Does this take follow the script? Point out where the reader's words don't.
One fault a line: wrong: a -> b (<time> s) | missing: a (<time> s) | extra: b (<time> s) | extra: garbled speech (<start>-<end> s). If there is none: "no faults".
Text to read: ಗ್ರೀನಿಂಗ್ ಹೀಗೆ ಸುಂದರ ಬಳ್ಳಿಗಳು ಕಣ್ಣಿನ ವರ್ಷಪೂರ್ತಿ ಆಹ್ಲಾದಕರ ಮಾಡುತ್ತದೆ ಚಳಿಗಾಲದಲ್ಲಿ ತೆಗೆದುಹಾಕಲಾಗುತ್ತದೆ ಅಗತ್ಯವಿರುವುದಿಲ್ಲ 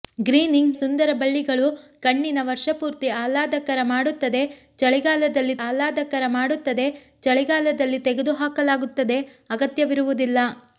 missing: ಹೀಗೆ (0.8 s)
extra: ಆಹ್ಲಾದಕರ ಮಾಡುತ್ತದೆ ಚಳಿಗಾಲದಲ್ಲಿ (5.6 s)